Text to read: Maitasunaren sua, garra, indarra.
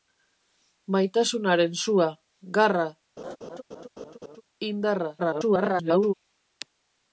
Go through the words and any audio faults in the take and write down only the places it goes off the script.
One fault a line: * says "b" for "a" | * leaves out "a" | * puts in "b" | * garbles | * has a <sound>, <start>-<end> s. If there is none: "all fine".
* has a laugh, 3.2-4.4 s
* garbles